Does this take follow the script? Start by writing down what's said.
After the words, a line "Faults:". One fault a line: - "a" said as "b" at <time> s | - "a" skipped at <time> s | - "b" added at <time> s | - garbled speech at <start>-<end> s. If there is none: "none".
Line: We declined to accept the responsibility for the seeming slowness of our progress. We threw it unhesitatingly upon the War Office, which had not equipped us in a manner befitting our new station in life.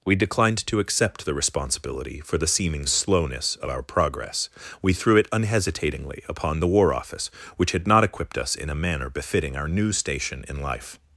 We declined to accept the responsibility for the seeming slowness of our progress. We threw it unhesitatingly upon the War Office, which had not equipped us in a manner befitting our new station in life.
Faults:
none